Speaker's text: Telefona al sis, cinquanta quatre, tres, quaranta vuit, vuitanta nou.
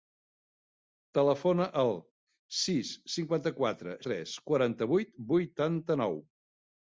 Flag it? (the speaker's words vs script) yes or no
no